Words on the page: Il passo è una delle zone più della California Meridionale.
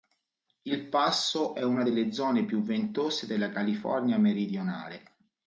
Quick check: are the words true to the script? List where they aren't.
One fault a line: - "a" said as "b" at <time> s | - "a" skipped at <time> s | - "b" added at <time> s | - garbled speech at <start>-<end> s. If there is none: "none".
- "ventose" added at 2.6 s